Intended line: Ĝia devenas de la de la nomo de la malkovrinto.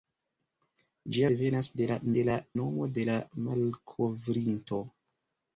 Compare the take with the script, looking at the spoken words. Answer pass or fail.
pass